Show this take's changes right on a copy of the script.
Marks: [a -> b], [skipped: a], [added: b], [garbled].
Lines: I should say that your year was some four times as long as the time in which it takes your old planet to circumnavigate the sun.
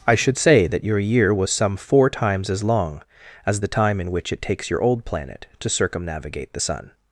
I should say that your year was some four times as long as the time in which it takes your old planet to circumnavigate the sun.